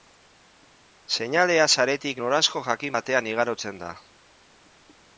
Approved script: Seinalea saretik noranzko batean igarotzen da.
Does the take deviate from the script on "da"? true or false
false